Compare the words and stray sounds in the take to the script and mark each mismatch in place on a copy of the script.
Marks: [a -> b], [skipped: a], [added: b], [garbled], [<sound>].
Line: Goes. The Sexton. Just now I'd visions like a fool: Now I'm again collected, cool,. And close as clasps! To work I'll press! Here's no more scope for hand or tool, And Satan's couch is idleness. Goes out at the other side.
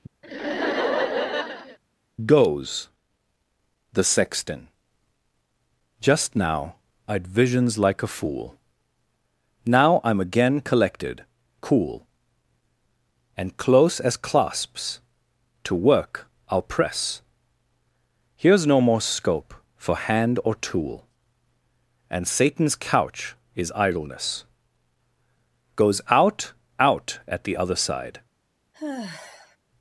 [laugh] Goes. The Sexton. Just now I'd visions like a fool: Now I'm again collected, cool,. And close as clasps! To work I'll press! Here's no more scope for hand or tool, And Satan's couch is idleness. Goes out [added: out] at the other side. [sigh]